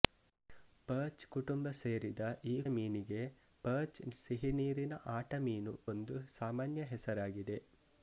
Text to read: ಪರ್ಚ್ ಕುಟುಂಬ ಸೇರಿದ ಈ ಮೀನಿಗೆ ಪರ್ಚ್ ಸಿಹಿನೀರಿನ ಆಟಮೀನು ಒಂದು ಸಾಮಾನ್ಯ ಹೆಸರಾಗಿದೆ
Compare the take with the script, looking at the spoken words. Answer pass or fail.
pass